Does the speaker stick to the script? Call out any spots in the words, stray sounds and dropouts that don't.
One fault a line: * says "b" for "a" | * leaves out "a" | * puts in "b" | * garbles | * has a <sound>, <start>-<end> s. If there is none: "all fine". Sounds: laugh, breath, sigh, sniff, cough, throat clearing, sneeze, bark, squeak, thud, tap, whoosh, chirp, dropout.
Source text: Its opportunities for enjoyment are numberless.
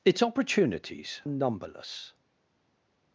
* leaves out "for enjoyment are"